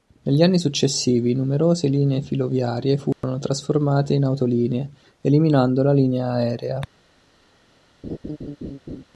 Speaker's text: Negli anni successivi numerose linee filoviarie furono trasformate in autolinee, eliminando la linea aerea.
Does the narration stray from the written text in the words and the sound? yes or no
yes